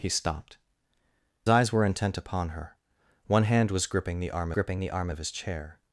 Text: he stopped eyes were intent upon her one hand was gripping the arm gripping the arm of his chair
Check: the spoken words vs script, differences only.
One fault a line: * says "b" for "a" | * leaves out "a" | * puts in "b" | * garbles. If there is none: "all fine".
all fine